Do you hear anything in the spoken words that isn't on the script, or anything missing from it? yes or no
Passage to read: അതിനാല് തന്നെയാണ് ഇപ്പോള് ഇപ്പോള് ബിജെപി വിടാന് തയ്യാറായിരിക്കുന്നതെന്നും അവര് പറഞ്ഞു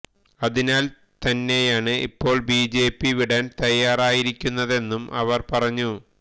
yes